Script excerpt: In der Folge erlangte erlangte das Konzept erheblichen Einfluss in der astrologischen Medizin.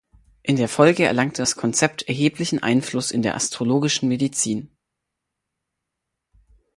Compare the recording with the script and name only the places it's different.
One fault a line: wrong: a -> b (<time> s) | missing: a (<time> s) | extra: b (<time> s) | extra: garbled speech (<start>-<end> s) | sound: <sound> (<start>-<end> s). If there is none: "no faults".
missing: erlangte (1.4 s)